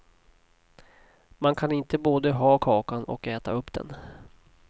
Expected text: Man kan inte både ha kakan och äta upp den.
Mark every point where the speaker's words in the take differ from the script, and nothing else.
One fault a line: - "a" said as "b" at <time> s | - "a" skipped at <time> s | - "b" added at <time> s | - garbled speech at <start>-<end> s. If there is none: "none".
none